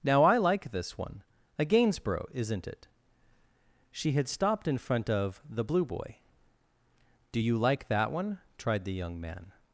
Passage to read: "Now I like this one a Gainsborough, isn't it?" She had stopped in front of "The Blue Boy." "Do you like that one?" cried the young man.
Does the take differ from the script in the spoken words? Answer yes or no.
yes